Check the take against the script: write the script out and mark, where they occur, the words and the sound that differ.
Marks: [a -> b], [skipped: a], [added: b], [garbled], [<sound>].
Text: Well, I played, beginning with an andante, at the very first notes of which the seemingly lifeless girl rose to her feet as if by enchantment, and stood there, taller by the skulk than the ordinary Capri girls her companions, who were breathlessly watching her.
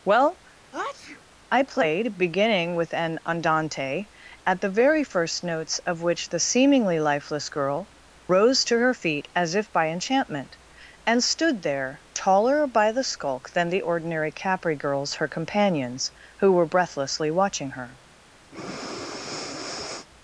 Well, [sneeze] I played, beginning with an andante, at the very first notes of which the seemingly lifeless girl rose to her feet as if by enchantment, and stood there, taller by the skulk than the ordinary Capri girls her companions, who were breathlessly watching her. [breath]